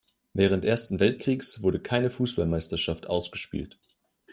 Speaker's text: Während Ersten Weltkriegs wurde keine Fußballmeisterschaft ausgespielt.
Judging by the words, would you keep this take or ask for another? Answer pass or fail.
pass